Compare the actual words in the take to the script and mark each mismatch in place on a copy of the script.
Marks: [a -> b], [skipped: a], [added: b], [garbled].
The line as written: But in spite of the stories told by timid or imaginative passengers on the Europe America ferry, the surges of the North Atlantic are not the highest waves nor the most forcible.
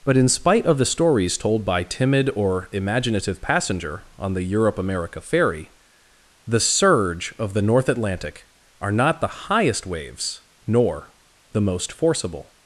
But in spite of the stories told by timid or imaginative [passengers -> passenger] on the Europe America ferry, the [surges -> surge] of the North Atlantic are not the highest waves nor the most forcible.